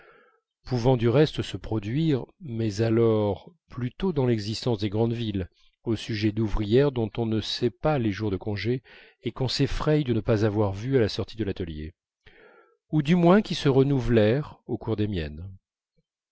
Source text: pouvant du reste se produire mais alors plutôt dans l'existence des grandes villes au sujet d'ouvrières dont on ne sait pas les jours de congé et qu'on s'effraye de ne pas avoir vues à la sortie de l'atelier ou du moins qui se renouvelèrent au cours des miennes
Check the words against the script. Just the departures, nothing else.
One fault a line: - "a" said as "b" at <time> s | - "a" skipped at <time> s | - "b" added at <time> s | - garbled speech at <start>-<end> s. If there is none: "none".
none